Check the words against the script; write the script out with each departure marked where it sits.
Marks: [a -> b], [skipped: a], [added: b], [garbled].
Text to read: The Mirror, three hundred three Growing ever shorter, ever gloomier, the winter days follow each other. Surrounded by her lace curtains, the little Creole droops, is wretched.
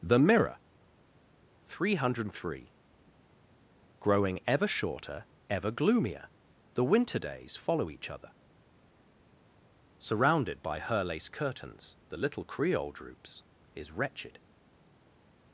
The Mirror, three hundred three Growing ever shorter, ever gloomier, the winter days follow each other. Surrounded by her lace curtains, the little Creole droops, is wretched.